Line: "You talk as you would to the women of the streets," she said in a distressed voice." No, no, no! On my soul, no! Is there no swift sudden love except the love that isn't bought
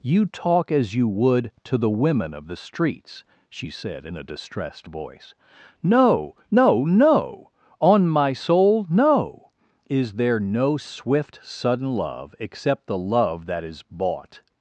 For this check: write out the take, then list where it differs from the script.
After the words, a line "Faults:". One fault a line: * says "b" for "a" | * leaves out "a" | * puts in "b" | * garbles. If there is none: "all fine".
"You talk as you would to the women of the streets," she said in a distressed voice." No, no, no! On my soul, no! Is there no swift sudden love except the love that is bought
Faults:
* says "is" for "isn't"